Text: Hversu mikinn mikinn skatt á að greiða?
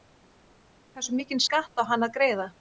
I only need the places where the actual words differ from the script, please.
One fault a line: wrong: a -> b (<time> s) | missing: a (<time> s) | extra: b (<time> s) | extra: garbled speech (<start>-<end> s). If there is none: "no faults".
missing: mikinn (1.4 s)
extra: hann (1.9 s)